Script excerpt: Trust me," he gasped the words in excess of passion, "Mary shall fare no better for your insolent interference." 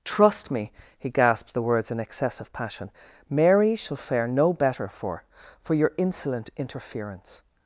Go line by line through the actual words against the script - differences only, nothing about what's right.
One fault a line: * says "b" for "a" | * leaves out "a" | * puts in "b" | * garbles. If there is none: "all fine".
* puts in "for"